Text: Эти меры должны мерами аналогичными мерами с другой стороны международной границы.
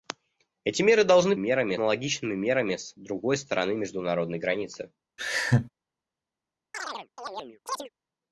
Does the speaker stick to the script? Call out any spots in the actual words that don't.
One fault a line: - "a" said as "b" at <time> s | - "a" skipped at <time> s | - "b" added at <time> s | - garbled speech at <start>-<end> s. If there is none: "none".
none